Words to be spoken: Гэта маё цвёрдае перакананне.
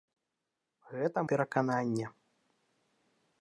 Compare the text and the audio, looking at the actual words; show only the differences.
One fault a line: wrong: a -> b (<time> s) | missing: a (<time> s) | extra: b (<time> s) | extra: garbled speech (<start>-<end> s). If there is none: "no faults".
missing: маё цвёрдае (1.2 s)